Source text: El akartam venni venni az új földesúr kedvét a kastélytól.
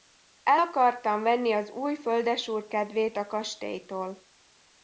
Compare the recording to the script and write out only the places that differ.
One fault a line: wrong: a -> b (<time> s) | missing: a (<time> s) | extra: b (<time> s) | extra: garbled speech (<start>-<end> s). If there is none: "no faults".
missing: venni (1.5 s)